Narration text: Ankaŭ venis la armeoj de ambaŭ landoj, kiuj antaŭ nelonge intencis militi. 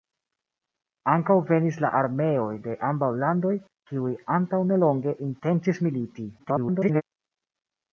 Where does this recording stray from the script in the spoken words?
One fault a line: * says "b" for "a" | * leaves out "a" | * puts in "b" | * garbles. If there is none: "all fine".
* garbles